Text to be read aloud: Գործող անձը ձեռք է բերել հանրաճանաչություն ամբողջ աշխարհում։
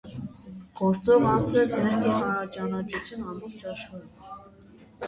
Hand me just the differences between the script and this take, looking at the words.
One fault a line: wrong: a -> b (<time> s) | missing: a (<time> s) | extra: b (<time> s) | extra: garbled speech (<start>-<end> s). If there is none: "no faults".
missing: բերել (2.1 s)